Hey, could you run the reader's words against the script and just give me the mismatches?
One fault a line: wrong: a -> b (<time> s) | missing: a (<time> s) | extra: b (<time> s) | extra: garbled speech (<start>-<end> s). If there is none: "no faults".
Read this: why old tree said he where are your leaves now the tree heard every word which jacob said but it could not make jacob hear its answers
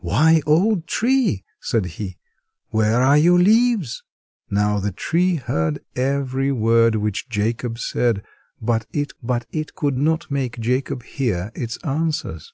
extra: but it (9.2 s)